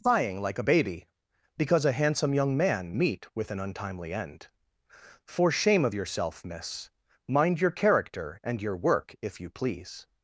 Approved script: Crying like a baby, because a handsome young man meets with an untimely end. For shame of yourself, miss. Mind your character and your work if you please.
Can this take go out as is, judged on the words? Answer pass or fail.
fail